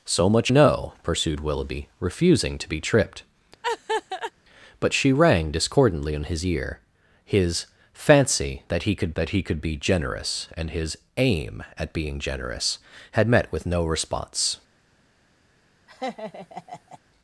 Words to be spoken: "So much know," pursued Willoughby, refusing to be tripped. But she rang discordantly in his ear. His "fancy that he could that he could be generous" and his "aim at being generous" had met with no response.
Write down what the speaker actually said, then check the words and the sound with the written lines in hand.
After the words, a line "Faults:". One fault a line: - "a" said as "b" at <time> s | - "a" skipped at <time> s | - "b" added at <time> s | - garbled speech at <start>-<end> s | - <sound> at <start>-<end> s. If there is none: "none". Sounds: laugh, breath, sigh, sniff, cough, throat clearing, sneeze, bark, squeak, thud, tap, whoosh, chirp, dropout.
"So much know," pursued Willoughby, refusing to be tripped. But she rang discordantly in his ear. His "fancy that he could that he could be generous" and his "aim at being generous" had met with no response.
Faults:
- laugh at 3.6-4.3 s
- laugh at 15.9-17.0 s